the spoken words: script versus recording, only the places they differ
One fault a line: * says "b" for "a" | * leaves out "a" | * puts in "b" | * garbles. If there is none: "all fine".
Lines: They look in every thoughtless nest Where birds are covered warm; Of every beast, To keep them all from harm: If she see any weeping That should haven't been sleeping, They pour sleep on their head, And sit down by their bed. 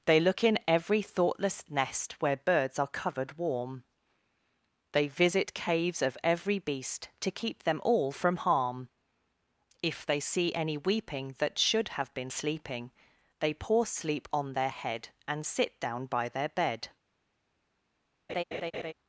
* puts in "They visit caves"
* says "they" for "she"
* says "have" for "haven't"